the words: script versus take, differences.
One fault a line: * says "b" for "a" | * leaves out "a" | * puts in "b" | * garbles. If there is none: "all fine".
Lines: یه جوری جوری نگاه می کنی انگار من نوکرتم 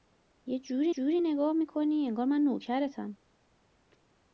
all fine